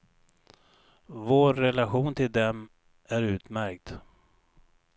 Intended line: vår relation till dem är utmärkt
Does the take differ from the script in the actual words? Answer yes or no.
no